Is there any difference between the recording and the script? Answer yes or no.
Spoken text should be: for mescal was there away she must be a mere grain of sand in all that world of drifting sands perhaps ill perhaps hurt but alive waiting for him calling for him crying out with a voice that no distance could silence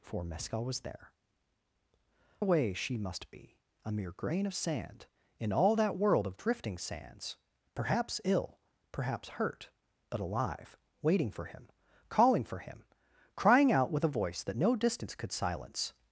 no